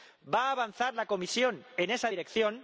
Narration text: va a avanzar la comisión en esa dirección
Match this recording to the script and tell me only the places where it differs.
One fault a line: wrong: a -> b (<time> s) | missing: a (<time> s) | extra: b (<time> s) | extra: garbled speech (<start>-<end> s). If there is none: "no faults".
no faults